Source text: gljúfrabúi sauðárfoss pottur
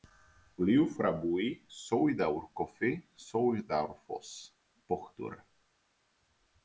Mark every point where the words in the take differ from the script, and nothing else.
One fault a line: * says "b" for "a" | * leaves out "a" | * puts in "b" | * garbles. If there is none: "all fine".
* puts in "sauðárkofi"